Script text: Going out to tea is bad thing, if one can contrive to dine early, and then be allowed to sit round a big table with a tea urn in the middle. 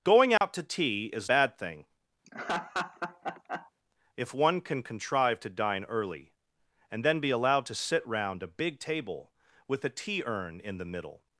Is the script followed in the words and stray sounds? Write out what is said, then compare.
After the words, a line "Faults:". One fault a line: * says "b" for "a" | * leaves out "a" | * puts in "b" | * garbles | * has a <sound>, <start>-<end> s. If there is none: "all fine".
Going out to tea is bad thing, if one can contrive to dine early, and then be allowed to sit round a big table with a tea urn in the middle.
Faults:
* has a dropout, 0.4-0.4 s
* has a laugh, 2.2-3.7 s